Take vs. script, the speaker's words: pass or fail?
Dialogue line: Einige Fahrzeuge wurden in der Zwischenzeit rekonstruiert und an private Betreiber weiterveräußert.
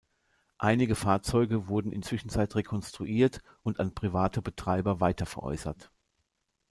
fail